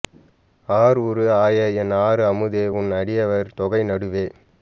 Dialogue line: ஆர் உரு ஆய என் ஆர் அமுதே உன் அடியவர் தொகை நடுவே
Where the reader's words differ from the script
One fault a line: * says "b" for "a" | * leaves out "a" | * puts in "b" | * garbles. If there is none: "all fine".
all fine